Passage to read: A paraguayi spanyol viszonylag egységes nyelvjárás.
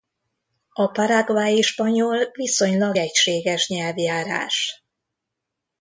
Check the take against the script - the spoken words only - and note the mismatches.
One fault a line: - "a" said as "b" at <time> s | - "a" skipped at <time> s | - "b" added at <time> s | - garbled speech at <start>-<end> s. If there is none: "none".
none